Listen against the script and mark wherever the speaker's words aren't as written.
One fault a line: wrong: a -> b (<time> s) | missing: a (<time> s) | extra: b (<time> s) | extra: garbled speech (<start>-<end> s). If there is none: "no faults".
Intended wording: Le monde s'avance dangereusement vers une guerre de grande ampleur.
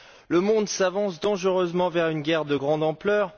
no faults